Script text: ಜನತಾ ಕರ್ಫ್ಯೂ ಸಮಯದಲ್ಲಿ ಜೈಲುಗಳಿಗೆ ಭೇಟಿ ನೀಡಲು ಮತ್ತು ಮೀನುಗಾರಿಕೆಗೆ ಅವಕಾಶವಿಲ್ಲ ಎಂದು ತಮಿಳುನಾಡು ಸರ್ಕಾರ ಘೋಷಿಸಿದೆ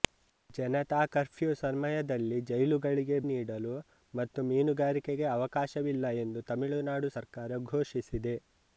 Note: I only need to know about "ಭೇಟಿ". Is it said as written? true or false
false